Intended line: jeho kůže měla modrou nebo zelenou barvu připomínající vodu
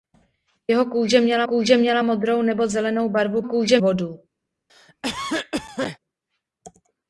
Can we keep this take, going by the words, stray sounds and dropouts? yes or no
no